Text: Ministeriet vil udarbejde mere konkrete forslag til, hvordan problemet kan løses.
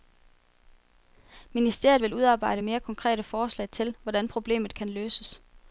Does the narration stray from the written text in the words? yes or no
no